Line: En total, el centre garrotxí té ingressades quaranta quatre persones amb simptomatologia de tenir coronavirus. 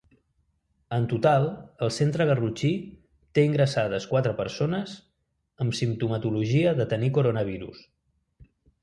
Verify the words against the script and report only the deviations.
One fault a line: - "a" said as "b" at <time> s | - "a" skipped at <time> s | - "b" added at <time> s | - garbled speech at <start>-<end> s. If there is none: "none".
- "quaranta" skipped at 4.1 s